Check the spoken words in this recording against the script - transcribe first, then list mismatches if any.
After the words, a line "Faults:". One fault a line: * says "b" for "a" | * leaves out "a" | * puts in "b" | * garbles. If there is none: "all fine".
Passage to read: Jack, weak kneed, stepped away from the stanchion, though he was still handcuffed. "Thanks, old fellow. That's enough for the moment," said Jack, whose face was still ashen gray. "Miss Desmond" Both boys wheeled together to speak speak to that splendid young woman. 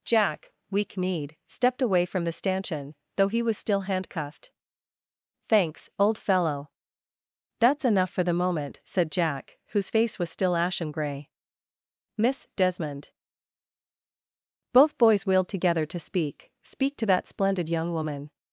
Jack, weak kneed, stepped away from the stanchion, though he was still handcuffed. "Thanks, old fellow. That's enough for the moment," said Jack, whose face was still ashen gray. "Miss Desmond" Both boys wheeled together to speak speak to that splendid young woman.
Faults:
all fine